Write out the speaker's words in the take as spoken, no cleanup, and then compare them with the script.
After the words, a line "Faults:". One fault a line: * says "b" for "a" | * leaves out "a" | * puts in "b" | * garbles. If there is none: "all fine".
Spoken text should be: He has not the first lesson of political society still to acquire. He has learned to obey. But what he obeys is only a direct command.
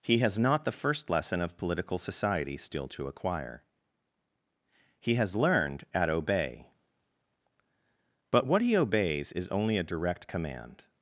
He has not the first lesson of political society still to acquire. He has learned at obey. But what he obeys is only a direct command.
Faults:
* says "at" for "to"